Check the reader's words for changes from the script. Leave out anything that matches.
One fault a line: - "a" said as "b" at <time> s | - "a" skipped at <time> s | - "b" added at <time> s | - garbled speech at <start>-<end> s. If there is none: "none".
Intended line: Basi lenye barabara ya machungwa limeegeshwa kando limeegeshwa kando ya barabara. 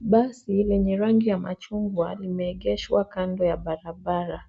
- "barabara" said as "rangi" at 1.0 s
- "limeegeshwa kando" skipped at 3.5 s